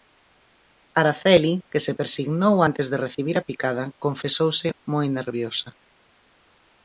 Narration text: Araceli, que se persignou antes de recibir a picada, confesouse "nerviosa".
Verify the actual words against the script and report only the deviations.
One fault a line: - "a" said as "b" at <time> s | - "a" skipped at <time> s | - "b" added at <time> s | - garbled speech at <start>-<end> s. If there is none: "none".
- "moi" added at 4.9 s